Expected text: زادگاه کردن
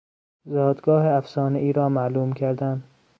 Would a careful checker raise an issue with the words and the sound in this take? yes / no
yes